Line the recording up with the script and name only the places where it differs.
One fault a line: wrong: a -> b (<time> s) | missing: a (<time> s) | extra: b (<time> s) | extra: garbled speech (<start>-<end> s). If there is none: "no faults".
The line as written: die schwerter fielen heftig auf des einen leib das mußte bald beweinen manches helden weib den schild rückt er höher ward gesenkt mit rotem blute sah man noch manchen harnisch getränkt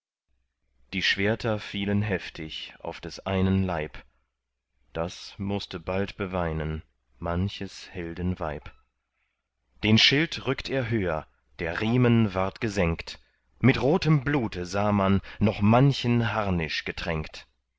extra: der riemen (11.6 s)